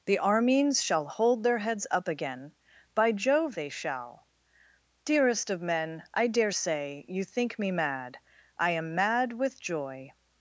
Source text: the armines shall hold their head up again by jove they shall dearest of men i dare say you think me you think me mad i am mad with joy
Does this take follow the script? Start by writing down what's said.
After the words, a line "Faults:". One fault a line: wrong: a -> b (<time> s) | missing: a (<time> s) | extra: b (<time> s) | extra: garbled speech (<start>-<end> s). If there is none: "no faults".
the armines shall hold their heads up again by jove they shall dearest of men i dare say you think me mad i am mad with joy
Faults:
wrong: head -> heads (1.6 s)
missing: you think me (7.7 s)